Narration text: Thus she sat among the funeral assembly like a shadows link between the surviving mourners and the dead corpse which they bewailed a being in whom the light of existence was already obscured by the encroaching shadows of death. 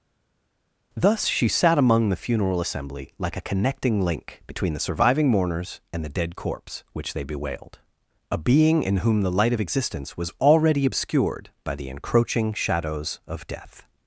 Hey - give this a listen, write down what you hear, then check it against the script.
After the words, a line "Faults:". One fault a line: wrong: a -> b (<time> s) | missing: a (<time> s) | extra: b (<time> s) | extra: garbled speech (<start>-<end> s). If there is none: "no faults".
Thus she sat among the funeral assembly like a connecting link between the surviving mourners and the dead corpse which they bewailed a being in whom the light of existence was already obscured by the encroaching shadows of death.
Faults:
wrong: shadows -> connecting (3.4 s)